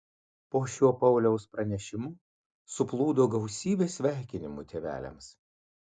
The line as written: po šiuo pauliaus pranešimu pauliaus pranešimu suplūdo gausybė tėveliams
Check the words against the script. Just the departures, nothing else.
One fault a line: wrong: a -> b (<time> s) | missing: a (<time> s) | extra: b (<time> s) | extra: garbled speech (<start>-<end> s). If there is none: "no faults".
missing: pauliaus pranešimu (2.1 s)
extra: sveikinimų (4.0 s)